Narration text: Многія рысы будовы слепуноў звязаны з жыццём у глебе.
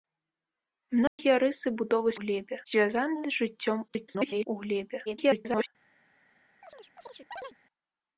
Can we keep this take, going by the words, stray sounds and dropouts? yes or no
no